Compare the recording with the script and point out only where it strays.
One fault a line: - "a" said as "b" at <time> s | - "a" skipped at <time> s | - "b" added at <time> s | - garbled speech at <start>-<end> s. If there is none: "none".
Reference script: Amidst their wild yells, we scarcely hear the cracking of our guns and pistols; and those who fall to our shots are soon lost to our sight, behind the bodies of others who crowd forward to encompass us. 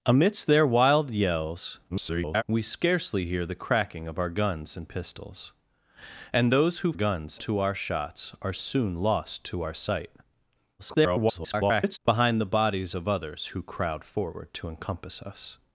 - garbled speech at 1.9-2.4 s
- "fall" said as "guns" at 6.9 s
- garbled speech at 10.8-12.0 s